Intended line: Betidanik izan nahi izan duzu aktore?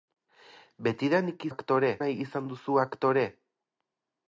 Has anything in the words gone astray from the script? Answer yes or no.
yes